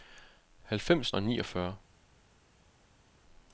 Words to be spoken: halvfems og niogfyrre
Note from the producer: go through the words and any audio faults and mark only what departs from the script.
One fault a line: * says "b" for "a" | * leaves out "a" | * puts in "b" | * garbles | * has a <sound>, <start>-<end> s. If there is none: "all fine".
all fine